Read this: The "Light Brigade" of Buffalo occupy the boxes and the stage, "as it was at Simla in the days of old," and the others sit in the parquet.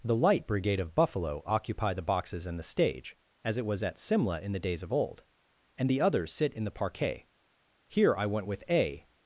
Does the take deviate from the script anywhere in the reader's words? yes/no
yes